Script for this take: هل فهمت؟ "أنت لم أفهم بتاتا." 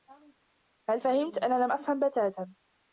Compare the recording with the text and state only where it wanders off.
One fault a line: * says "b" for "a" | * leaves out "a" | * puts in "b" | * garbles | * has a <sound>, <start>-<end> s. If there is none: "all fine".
* says "أنا" for "أنت"